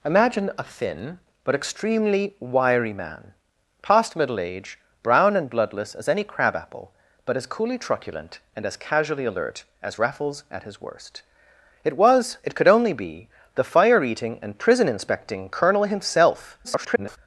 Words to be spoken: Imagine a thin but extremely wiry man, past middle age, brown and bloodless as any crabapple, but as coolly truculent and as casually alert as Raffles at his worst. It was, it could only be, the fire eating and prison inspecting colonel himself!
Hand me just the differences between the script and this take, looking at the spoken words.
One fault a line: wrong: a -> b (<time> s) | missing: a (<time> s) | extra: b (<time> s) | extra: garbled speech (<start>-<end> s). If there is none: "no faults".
extra: garbled speech (16.6-17.2 s)